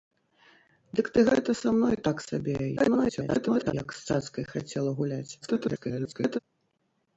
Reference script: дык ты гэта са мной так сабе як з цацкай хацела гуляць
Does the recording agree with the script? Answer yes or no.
no